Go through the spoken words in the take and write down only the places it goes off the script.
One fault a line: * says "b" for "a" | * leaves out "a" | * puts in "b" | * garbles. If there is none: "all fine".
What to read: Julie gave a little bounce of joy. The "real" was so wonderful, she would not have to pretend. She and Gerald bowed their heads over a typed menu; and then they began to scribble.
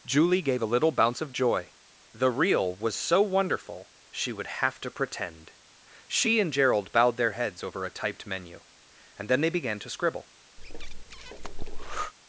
* leaves out "not"